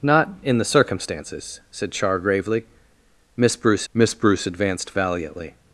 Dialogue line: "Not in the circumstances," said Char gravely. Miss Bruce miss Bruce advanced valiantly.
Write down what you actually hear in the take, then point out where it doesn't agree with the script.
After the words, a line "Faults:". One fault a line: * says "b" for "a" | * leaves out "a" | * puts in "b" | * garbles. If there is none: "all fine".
"Not in the circumstances," said Char gravely. Miss Bruce miss Bruce advanced valiantly.
Faults:
all fine